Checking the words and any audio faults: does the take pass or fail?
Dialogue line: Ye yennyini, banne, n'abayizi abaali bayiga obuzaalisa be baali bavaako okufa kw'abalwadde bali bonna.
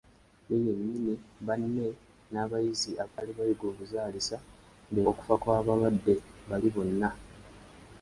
fail